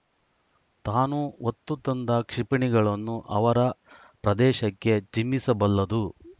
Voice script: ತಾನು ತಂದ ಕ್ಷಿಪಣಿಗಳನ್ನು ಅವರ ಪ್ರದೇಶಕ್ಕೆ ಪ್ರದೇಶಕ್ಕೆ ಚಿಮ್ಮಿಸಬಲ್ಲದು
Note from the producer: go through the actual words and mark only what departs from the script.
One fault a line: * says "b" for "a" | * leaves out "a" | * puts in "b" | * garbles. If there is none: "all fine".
* puts in "ಹೊತ್ತು"
* leaves out "ಪ್ರದೇಶಕ್ಕೆ"